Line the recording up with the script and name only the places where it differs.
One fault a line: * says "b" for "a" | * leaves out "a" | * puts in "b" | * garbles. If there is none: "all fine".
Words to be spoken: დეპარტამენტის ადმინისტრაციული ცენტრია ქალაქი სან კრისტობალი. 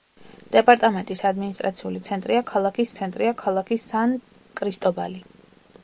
* puts in "ცენტრია ქალაქი"